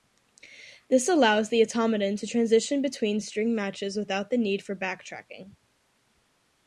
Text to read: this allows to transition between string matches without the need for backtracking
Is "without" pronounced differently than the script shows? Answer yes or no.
no